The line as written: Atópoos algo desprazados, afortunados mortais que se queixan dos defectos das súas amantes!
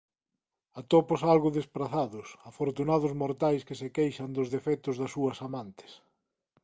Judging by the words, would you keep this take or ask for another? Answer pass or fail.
pass